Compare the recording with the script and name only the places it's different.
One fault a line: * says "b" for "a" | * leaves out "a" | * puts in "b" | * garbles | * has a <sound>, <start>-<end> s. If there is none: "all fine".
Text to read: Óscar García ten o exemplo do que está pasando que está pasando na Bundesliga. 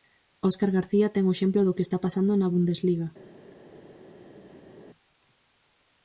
* leaves out "que está pasando"